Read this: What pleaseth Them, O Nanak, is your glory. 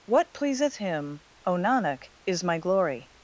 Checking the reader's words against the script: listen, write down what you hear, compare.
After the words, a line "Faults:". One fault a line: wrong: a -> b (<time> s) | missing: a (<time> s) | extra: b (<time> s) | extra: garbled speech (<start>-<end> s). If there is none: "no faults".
What pleaseth Him, O Nanak, is my glory.
Faults:
wrong: Them -> Him (0.7 s)
wrong: your -> my (2.4 s)